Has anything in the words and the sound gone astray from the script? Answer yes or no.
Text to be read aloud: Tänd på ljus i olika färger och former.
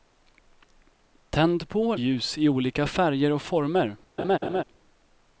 yes